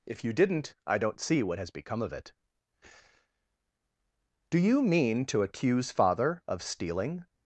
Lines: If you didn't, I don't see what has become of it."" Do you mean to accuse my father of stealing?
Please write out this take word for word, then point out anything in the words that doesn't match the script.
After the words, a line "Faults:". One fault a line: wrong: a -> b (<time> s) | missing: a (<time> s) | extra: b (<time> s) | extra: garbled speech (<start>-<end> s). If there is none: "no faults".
If you didn't, I don't see what has become of it."" Do you mean to accuse father of stealing?
Faults:
missing: my (5.9 s)